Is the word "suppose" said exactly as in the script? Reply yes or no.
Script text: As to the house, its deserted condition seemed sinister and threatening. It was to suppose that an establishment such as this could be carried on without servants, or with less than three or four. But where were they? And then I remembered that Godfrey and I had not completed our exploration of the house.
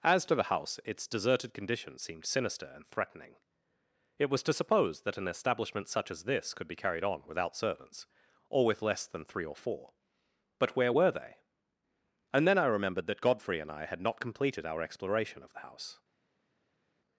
yes